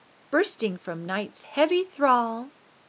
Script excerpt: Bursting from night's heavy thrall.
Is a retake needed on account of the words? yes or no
no